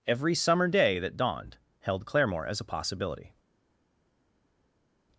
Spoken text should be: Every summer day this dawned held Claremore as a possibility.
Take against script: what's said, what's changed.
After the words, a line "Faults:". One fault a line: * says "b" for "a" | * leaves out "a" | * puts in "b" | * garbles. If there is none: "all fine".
Every summer day that dawned held Claremore as a possibility.
Faults:
* says "that" for "this"